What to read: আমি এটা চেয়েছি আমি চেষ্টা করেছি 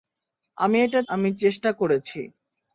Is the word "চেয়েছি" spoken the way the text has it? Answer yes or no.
no